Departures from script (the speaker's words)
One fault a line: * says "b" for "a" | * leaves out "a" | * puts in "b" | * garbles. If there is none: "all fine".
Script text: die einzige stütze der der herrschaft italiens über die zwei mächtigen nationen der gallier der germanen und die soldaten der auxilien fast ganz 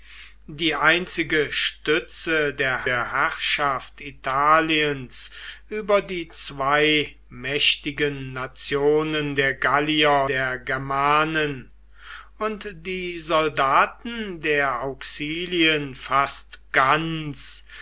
all fine